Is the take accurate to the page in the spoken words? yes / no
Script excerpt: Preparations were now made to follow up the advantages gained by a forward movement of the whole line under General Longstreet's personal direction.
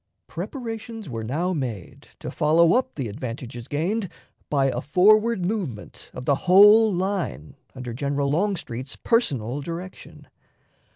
yes